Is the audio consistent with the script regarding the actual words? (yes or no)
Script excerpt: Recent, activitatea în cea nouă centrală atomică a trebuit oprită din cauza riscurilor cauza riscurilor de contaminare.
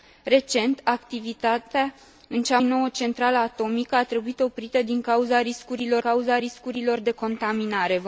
yes